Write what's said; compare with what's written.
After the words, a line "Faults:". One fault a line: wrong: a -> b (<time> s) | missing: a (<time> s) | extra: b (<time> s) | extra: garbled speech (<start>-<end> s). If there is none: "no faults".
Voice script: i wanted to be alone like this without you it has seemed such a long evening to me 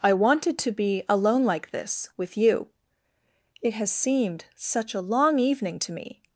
i wanted to be alone like this with you it has seemed such a long evening to me
Faults:
wrong: without -> with (2.2 s)